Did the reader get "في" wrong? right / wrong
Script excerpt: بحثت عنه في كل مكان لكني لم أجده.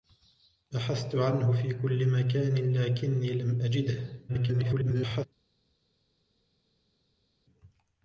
right